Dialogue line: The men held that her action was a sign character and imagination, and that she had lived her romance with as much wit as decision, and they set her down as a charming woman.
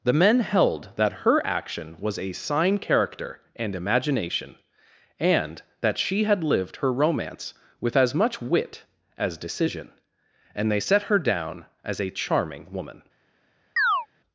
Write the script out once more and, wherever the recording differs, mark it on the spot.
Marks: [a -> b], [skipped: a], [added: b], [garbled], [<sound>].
The men held that her action was a sign character and imagination, and that she had lived her romance with as much wit as decision, and they set her down as a charming woman. [chirp]